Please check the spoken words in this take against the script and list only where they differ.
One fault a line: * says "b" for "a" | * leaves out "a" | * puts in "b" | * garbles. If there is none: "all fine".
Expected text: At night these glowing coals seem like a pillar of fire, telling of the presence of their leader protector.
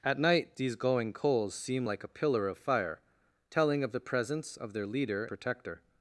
all fine